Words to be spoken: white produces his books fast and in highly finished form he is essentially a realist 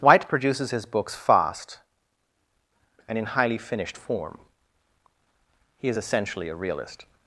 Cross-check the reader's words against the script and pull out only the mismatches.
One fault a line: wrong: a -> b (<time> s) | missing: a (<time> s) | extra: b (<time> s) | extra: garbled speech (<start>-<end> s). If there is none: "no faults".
no faults